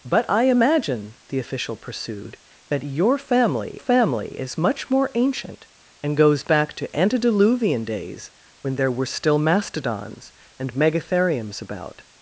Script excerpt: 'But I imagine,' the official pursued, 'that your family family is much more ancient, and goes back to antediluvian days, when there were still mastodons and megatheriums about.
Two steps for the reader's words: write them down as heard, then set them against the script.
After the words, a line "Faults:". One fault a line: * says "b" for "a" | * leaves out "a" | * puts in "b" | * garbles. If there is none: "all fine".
'But I imagine,' the official pursued, 'that your family family is much more ancient, and goes back to antediluvian days, when there were still mastodons and megatheriums about.
Faults:
all fine